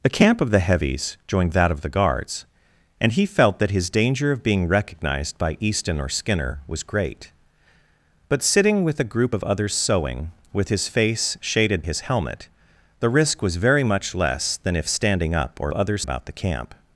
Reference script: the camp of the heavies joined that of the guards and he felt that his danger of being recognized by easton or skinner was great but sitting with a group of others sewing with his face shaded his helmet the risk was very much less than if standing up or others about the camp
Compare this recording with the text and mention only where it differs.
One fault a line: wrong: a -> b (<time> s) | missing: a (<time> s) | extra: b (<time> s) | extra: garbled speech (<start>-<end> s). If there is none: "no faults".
no faults